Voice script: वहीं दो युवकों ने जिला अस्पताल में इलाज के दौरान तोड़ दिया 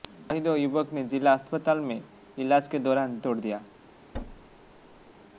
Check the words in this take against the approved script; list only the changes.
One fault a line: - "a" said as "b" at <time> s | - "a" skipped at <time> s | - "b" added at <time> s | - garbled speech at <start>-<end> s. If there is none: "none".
none